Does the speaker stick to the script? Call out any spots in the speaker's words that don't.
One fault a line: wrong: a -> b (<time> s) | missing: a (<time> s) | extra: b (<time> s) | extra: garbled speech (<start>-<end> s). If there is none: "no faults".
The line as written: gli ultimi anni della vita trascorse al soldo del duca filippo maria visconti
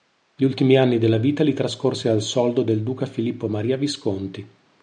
extra: li (1.4 s)